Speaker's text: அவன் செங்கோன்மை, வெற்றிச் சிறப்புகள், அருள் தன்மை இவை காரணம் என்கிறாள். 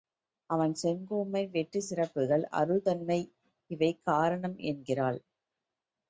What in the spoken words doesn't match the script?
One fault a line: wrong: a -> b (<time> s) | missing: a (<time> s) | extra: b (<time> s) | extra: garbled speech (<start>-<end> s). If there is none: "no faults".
no faults